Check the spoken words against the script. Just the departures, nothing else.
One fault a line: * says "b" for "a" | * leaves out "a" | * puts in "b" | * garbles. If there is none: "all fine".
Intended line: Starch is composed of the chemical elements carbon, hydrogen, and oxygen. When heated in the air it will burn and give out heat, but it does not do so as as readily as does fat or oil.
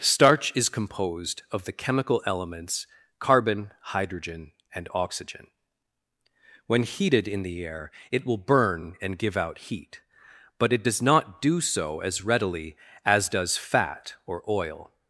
* leaves out "as"